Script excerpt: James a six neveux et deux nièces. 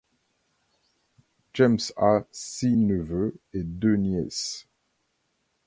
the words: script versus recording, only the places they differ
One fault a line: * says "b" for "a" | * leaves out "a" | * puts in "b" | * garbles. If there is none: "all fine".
all fine